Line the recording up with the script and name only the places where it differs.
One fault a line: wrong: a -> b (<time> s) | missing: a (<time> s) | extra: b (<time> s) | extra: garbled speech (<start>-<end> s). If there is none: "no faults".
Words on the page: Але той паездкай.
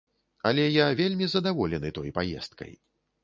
extra: я вельмі задаволены (0.7 s)